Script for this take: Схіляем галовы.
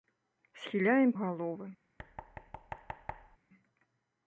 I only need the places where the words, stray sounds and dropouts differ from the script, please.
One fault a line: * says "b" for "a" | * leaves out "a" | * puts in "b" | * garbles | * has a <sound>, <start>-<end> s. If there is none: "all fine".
* has a thud, 2.0-3.4 s